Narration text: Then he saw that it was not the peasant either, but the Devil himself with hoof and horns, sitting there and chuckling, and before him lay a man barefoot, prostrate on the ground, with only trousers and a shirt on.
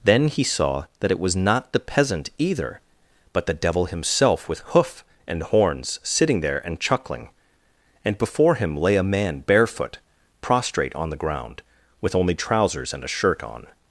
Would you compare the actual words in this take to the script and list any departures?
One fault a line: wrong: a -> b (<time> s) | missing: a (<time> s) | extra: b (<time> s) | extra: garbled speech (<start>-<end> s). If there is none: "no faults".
no faults